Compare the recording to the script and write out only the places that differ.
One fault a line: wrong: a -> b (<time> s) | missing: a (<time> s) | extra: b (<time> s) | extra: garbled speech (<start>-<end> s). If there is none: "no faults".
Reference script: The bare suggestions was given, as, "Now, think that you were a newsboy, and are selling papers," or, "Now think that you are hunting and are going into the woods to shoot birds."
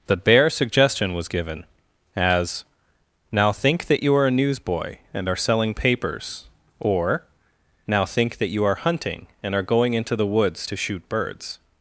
wrong: suggestions -> suggestion (0.5 s)
wrong: were -> are (4.1 s)